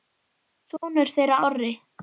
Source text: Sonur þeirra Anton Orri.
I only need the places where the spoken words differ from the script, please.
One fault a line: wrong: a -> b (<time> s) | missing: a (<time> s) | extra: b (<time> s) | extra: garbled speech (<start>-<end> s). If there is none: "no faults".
missing: Anton (1.4 s)